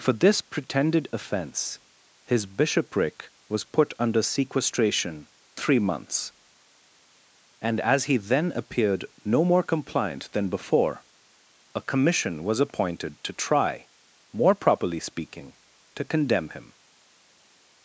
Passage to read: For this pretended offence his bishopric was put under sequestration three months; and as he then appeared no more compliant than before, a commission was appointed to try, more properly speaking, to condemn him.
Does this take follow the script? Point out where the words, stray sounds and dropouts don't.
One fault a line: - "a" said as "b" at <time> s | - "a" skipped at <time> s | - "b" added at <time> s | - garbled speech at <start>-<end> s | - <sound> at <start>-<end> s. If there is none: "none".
none